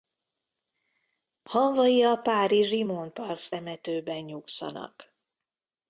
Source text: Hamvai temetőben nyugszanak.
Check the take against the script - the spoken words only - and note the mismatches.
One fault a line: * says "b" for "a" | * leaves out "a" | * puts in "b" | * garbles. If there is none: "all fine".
* puts in "a párizsi Montparnasse"